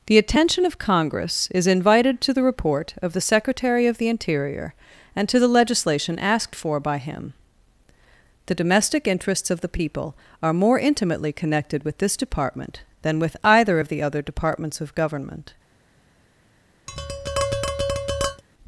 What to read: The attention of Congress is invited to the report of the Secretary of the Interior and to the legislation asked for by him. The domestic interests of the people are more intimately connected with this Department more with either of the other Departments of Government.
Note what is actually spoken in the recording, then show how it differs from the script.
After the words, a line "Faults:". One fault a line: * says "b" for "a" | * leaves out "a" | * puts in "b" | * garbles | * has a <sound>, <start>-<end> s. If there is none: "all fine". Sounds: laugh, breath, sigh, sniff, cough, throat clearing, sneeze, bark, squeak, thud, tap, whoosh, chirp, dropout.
The attention of Congress is invited to the report of the Secretary of the Interior and to the legislation asked for by him. The domestic interests of the people are more intimately connected with this Department than with either of the other Departments of Government.
Faults:
* says "than" for "more"
* has a tap, 16.9-18.4 s